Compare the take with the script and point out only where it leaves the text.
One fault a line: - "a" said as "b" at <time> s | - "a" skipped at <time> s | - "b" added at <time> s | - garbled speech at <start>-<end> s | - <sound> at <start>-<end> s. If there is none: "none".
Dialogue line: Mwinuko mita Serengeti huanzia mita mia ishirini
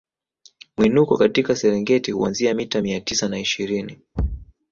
- "mita" said as "katika" at 1.2 s
- "tisa na" added at 3.0 s
- thud at 4.2-4.5 s